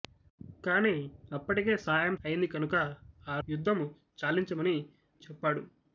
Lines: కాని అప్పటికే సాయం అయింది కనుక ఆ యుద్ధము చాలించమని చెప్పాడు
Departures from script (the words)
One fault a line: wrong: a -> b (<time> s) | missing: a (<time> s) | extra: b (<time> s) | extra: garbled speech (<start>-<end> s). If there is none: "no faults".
no faults